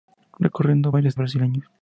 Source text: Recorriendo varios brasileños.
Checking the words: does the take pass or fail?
pass